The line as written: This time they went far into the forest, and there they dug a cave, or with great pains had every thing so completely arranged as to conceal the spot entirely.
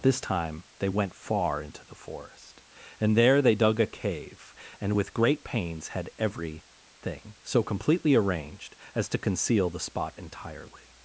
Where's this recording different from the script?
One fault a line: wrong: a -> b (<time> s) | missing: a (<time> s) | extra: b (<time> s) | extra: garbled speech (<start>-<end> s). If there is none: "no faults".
wrong: or -> and (4.8 s)